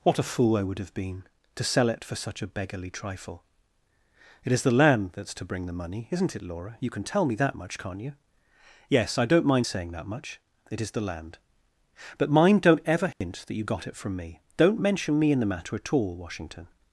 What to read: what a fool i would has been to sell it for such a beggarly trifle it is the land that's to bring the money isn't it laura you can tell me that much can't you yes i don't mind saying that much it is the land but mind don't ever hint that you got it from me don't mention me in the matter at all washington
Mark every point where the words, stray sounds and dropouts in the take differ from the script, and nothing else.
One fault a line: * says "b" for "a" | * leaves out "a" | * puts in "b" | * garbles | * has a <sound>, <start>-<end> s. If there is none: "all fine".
* says "have" for "has"
* has a dropout, 13.1-13.2 s